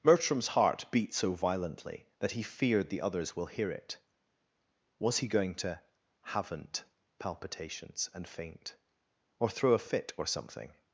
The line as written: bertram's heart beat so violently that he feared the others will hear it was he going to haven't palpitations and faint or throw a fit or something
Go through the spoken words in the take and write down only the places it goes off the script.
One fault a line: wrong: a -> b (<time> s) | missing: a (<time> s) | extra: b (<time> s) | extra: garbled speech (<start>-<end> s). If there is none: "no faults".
no faults